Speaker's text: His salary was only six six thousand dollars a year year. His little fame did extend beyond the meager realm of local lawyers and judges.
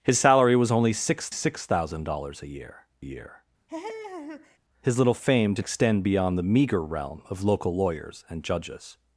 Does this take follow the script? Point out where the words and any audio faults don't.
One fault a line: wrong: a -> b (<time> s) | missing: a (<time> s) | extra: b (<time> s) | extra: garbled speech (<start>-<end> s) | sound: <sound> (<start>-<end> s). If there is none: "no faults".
sound: laugh (3.7-4.6 s)